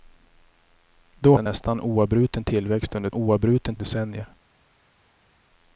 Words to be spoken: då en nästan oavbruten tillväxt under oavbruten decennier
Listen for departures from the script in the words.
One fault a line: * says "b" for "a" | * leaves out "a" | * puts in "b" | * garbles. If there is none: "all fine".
all fine